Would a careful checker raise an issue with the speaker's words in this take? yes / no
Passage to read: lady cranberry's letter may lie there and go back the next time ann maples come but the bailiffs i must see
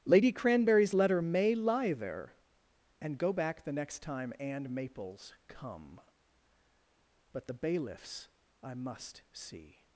no